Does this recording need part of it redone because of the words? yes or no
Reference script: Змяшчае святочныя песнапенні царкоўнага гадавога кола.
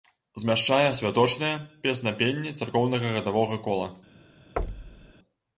no